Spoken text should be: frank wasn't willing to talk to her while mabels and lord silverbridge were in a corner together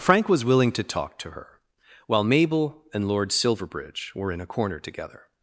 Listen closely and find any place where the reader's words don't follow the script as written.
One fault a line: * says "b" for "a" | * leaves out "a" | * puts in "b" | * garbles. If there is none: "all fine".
* says "was" for "wasn't"
* says "mabel" for "mabels"